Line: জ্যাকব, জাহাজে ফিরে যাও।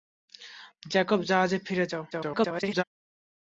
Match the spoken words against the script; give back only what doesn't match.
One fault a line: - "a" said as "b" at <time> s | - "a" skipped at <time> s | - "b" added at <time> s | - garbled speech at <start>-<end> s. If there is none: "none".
- garbled speech at 2.1-2.8 s